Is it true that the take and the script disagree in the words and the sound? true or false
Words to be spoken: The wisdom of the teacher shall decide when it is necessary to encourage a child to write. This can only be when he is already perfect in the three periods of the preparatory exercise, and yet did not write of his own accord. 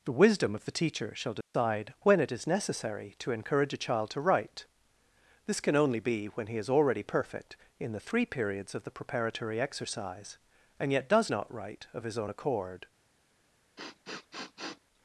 true